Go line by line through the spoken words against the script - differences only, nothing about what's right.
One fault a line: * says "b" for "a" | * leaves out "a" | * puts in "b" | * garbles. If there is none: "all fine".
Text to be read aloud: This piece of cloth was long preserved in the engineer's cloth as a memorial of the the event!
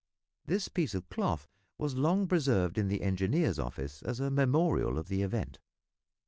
* says "office" for "cloth"
* leaves out "the"